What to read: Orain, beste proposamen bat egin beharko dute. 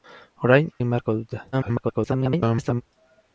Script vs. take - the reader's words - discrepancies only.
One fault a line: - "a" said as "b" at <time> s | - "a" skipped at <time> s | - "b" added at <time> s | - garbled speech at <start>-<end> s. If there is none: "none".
- "beste proposamen bat" skipped at 0.7 s
- garbled speech at 1.5-2.8 s